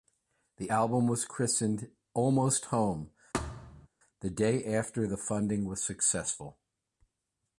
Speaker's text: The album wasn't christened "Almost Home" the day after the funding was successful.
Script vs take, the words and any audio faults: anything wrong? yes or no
yes